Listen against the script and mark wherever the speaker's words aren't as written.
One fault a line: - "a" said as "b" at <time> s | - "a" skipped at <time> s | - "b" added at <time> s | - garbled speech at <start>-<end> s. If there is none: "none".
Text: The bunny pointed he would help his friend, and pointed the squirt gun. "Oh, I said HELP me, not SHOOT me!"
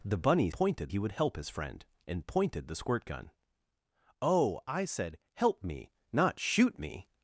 none